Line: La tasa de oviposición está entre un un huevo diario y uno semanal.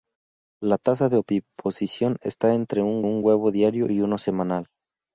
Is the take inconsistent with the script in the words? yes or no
no